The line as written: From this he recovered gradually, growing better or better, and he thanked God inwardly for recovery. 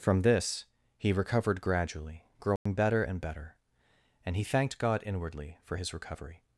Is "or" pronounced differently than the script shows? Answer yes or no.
yes